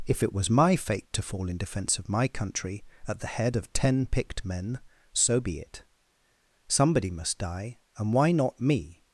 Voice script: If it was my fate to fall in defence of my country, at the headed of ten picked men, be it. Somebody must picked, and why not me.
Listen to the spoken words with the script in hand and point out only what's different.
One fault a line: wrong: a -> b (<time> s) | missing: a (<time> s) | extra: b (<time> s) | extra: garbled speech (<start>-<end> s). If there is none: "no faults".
wrong: headed -> head (3.3 s)
extra: so (5.1 s)
wrong: picked -> die (7.4 s)